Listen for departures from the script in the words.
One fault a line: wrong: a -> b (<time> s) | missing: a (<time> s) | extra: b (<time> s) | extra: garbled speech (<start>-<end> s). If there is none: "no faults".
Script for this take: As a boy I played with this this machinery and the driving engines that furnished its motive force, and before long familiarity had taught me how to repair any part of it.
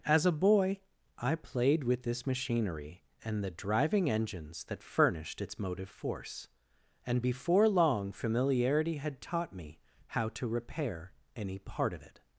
missing: this (2.2 s)